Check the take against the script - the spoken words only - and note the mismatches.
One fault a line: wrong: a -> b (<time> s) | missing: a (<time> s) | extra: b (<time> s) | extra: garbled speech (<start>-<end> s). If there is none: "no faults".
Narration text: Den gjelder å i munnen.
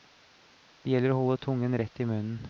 wrong: Den -> Det (0.8 s)
extra: holde tungen rett (1.2 s)